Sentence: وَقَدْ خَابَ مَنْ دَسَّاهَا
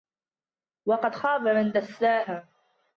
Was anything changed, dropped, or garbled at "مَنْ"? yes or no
no